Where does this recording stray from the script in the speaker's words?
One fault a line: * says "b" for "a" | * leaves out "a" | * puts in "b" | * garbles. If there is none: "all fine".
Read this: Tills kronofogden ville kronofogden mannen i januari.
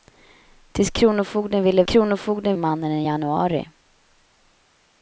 all fine